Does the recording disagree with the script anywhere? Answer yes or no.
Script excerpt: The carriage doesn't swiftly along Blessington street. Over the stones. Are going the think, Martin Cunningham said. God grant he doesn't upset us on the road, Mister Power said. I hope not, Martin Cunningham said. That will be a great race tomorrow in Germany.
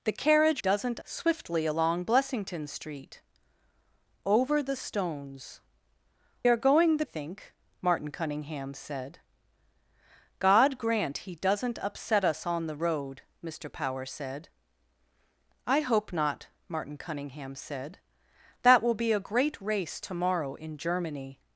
no